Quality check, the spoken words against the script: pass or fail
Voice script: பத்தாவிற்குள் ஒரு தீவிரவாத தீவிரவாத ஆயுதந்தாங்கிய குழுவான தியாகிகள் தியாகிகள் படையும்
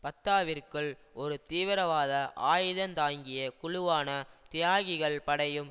fail